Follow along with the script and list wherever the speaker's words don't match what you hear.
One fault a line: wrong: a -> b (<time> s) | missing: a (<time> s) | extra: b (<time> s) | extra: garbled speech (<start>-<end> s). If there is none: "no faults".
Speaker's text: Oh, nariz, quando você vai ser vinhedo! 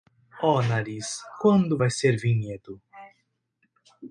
missing: você (1.8 s)